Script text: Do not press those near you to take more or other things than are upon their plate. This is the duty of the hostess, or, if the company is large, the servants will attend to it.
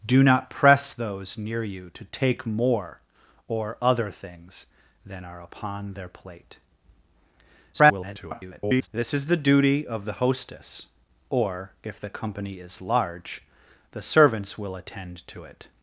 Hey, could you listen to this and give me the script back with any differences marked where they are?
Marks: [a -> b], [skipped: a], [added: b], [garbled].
Do not press those near you to take more or other things than are upon their plate. [garbled] This is the duty of the hostess, or, if the company is large, the servants will attend to it.